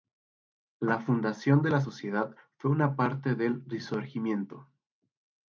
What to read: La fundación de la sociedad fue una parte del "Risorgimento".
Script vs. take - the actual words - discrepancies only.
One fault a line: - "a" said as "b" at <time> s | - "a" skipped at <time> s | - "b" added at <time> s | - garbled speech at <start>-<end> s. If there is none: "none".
none